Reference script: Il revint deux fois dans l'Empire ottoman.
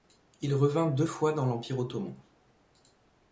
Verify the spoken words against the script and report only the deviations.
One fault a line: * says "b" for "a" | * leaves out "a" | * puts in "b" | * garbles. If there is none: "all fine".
all fine